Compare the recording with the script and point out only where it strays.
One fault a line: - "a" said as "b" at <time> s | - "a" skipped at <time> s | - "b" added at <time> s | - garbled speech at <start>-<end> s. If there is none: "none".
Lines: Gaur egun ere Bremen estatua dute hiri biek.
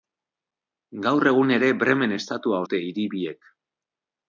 none